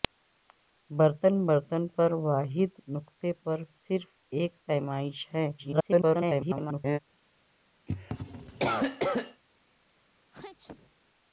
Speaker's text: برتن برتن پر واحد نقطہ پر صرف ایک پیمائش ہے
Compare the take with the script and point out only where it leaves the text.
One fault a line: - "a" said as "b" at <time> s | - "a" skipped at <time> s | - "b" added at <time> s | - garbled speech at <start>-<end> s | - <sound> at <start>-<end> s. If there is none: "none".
- garbled speech at 5.6-7.0 s
- cough at 7.9-9.4 s
- sneeze at 10.3-10.9 s